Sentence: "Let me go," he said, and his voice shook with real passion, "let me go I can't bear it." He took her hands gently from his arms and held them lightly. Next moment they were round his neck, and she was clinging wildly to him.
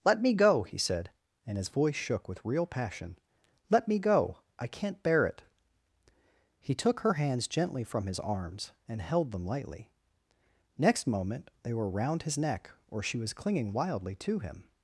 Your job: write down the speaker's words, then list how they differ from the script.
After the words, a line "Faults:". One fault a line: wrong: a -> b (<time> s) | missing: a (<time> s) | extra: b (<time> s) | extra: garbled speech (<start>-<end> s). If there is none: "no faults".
"Let me go," he said, and his voice shook with real passion, "let me go I can't bear it." He took her hands gently from his arms and held them lightly. Next moment they were round his neck, or she was clinging wildly to him.
Faults:
wrong: and -> or (12.9 s)